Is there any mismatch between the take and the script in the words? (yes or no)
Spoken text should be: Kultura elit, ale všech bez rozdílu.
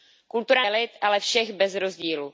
no